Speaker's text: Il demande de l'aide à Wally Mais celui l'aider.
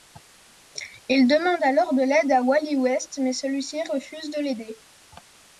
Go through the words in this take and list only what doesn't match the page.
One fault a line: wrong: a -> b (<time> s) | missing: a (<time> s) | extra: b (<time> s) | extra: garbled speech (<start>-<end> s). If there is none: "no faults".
extra: alors (1.6 s)
extra: West (2.8 s)
extra: ci refuse de (3.6 s)